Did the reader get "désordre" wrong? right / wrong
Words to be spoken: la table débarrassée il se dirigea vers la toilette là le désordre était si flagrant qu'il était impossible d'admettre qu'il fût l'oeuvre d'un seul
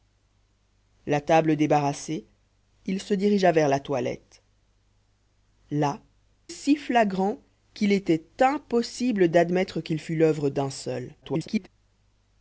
wrong